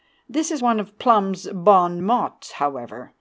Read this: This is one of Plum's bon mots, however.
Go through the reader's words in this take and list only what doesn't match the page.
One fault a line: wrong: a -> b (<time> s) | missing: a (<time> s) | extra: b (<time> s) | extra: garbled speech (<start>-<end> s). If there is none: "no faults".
no faults